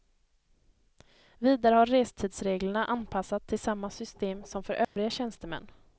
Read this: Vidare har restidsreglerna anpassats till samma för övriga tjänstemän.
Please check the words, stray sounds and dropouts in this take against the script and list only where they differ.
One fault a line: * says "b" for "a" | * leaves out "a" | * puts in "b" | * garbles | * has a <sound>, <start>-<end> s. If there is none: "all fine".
* puts in "system som"
* has a dropout, 4.8-5.0 s